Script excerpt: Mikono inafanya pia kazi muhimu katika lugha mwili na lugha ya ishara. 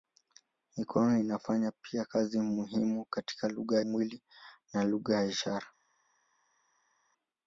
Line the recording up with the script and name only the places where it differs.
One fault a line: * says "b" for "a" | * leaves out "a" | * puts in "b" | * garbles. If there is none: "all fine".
all fine